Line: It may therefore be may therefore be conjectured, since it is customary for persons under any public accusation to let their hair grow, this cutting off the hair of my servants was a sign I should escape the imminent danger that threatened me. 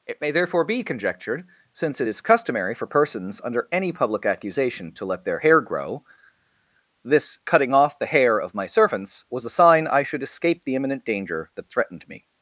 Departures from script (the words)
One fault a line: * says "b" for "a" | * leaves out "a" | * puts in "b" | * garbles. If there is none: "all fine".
* leaves out "may therefore be"